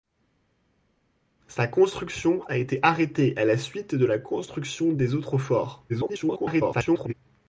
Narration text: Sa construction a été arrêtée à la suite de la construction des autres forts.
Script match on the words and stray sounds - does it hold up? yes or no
no